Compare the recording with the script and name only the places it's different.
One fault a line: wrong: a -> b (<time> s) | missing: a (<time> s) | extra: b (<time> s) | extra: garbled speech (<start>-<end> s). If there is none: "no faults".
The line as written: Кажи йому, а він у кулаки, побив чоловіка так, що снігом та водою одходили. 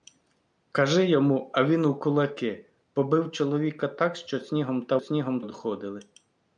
wrong: водою -> снігом (5.0 s)